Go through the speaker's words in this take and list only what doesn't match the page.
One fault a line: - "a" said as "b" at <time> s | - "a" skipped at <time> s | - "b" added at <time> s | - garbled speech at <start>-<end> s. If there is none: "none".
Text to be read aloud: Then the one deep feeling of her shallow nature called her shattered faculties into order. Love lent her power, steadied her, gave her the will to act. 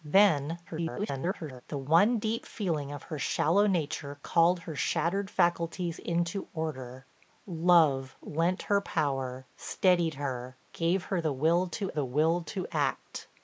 - garbled speech at 0.7-1.6 s
- "the will to" added at 11.9 s